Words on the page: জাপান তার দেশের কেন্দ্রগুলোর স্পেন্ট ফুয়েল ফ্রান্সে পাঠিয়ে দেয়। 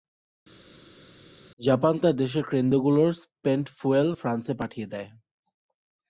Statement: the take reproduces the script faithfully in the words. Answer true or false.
true